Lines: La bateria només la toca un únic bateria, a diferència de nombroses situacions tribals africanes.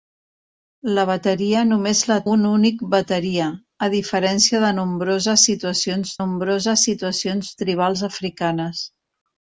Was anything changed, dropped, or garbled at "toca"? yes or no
yes